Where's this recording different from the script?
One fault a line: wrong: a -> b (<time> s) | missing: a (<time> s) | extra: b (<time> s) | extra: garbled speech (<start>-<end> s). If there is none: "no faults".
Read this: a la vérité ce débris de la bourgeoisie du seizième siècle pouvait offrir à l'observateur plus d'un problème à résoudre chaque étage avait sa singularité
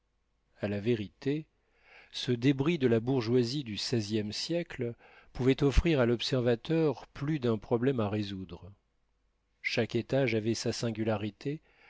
no faults